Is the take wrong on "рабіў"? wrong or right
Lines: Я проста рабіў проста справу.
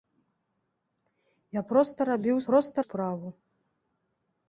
right